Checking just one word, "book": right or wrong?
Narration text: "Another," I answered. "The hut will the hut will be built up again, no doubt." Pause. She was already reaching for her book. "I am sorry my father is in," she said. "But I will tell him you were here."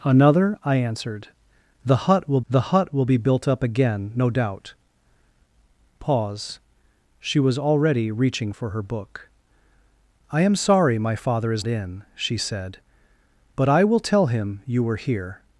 right